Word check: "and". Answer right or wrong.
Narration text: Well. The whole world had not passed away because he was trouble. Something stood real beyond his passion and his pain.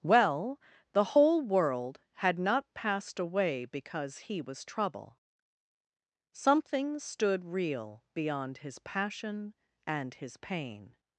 right